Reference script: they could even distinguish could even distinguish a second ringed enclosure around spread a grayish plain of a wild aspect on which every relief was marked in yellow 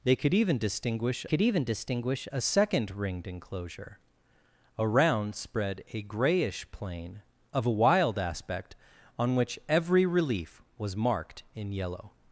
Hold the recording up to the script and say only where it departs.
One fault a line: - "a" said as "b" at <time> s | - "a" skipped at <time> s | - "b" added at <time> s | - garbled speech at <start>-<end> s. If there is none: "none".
none